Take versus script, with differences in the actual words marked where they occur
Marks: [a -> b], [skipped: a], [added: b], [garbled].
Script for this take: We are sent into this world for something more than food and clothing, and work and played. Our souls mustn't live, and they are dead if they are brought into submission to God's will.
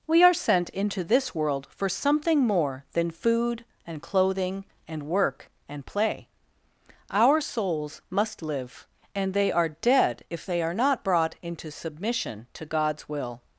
We are sent into this world for something more than food and clothing, and work and [played. -> play] Our souls [mustn't -> must] live, and they are dead if they are [added: not] brought into submission to God's will.